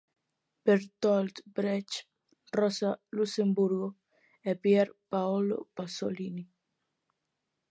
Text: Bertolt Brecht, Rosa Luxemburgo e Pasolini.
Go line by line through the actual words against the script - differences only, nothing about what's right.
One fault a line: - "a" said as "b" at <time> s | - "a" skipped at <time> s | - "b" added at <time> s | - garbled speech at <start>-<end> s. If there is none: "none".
- "Pier Paolo" added at 4.5 s